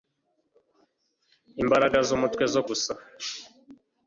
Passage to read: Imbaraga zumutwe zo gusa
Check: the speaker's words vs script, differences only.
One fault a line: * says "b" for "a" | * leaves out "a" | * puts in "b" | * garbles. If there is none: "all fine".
all fine